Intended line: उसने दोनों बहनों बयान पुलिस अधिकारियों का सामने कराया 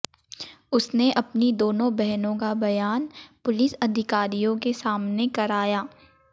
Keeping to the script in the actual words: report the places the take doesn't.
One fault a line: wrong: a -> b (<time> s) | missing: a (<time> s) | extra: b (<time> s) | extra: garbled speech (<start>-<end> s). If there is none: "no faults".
extra: अपनी (1.1 s)
extra: का (2.4 s)
wrong: का -> के (4.6 s)